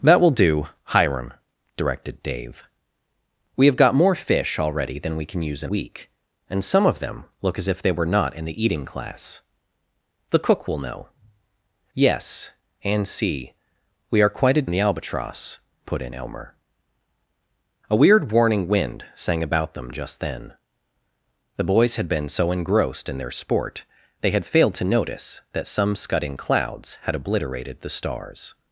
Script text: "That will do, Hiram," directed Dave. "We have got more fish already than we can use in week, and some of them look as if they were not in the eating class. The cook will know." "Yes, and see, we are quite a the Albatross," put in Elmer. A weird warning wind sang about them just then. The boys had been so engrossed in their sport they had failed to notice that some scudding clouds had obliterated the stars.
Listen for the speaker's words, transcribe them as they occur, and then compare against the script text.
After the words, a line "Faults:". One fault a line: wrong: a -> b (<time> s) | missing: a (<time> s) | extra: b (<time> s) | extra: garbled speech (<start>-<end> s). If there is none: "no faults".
"That will do, Hiram," directed Dave. "We have got more fish already than we can use in week, and some of them look as if they were not in the eating class. The cook will know." "Yes, and see, we are quite a the Albatross," put in Elmer. A weird warning wind sang about them just then. The boys had been so engrossed in their sport they had failed to notice that some scudding clouds had obliterated the stars.
Faults:
no faults